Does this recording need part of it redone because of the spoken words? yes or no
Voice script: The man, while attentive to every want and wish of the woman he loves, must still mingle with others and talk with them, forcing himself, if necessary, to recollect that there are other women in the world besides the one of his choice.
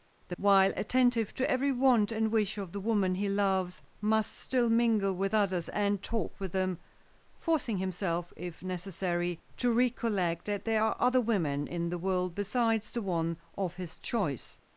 yes